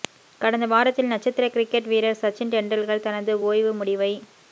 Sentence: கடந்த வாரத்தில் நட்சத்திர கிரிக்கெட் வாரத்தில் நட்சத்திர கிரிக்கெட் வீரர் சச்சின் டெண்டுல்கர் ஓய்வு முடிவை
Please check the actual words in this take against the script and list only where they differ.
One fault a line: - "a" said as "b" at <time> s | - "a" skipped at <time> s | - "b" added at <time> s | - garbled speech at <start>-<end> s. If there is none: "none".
- "வாரத்தில் நட்சத்திர கிரிக்கெட்" skipped at 1.9 s
- "தனது" added at 3.0 s